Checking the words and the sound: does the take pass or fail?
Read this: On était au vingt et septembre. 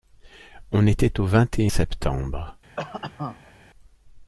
fail